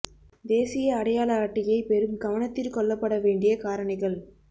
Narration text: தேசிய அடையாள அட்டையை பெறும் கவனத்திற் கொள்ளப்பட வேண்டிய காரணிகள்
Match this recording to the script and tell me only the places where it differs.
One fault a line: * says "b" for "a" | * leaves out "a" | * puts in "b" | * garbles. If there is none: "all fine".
all fine